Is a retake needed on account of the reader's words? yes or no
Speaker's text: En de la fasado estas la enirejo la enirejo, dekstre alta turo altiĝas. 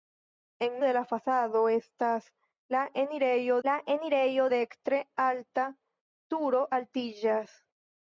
no